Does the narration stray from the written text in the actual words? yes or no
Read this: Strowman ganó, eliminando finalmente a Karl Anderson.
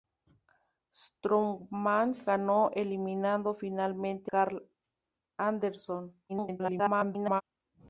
yes